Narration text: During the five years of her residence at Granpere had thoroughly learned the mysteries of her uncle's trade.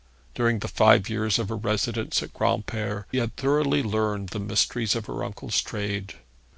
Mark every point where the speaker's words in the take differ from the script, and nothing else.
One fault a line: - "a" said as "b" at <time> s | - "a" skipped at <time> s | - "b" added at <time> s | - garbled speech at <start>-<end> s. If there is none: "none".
none